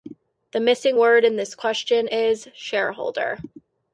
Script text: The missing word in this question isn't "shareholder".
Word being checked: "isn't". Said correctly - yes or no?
no